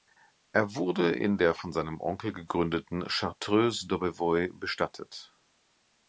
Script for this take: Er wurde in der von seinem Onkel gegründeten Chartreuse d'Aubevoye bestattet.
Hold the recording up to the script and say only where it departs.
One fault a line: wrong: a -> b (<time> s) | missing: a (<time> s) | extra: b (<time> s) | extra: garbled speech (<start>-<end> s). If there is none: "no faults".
no faults